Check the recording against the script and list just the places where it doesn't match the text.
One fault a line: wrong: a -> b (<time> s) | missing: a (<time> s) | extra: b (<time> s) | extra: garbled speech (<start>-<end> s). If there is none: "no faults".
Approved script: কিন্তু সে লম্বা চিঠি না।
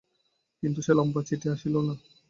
extra: আসিল (1.5 s)